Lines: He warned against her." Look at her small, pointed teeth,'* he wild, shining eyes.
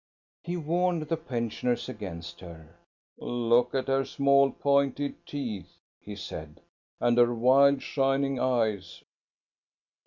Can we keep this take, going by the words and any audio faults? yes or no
no